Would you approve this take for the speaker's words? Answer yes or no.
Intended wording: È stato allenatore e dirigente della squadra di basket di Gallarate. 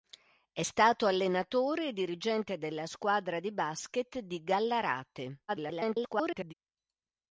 no